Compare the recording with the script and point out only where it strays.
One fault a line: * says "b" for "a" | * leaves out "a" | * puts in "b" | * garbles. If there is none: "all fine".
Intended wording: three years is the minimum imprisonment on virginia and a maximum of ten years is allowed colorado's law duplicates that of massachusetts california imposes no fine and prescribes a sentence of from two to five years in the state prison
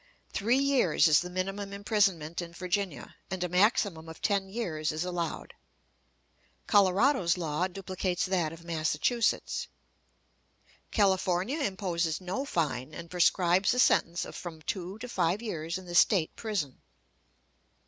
* says "in" for "on"